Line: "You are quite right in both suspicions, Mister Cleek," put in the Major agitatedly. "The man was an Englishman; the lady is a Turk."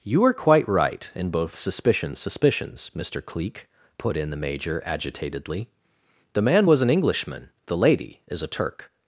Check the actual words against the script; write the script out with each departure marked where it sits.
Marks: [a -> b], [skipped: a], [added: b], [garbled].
"You are quite right in both suspicions, [added: suspicions] Mister Cleek," put in the Major agitatedly. "The man was an Englishman; the lady is a Turk."